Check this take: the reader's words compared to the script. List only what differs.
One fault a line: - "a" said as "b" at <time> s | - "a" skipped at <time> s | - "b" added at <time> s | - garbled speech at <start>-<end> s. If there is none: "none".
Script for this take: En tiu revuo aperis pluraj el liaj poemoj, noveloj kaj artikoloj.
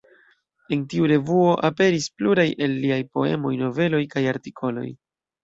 none